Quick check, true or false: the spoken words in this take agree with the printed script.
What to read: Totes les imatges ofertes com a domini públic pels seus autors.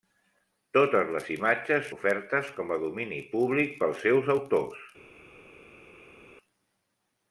true